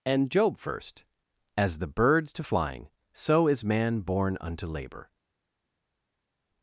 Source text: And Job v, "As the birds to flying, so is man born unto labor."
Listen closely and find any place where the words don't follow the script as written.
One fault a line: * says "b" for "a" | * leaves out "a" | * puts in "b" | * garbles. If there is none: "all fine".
* says "first" for "v"